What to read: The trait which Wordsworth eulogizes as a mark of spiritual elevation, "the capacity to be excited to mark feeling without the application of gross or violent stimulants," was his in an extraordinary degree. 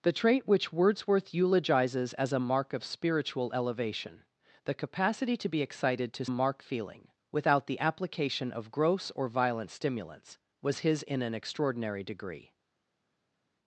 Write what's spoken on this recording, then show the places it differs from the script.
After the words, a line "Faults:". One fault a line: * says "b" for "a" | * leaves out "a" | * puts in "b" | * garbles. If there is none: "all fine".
The trait which Wordsworth eulogizes as a mark of spiritual elevation, "the capacity to be excited to mark feeling without the application of gross or violent stimulants," was his in an extraordinary degree.
Faults:
all fine